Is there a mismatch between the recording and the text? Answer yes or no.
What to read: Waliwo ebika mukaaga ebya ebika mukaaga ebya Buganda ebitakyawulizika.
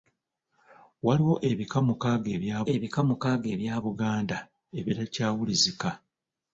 no